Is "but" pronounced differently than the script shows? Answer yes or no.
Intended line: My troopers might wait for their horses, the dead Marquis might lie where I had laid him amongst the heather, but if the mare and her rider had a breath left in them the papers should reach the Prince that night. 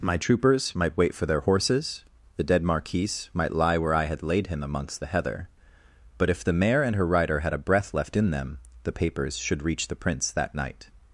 no